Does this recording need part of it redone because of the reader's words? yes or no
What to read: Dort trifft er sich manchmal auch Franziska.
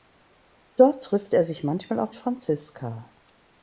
no